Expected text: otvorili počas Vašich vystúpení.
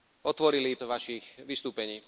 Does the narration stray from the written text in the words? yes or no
yes